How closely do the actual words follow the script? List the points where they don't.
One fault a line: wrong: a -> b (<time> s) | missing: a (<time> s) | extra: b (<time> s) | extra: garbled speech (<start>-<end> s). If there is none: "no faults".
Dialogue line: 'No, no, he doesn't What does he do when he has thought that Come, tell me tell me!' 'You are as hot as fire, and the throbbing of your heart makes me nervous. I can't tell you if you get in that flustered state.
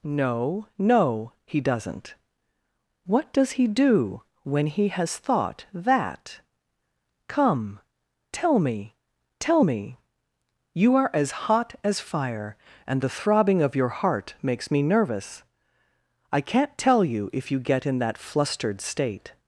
no faults